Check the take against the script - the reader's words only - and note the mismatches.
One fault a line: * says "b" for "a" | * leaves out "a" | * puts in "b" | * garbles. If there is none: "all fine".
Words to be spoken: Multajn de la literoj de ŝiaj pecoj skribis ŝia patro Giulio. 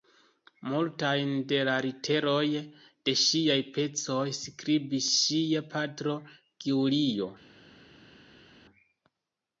all fine